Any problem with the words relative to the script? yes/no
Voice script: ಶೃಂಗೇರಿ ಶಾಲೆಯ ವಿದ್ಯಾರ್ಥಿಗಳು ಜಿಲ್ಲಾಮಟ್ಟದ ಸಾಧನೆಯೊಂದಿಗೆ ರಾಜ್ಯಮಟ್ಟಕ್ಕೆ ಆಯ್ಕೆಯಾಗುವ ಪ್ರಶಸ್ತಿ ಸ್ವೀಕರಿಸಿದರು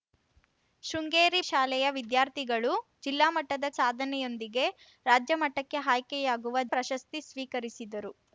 no